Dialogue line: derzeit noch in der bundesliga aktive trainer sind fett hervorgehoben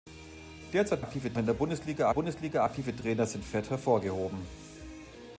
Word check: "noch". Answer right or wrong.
wrong